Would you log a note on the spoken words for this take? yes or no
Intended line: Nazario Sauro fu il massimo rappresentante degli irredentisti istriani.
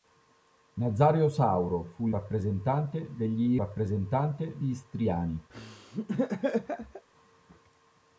yes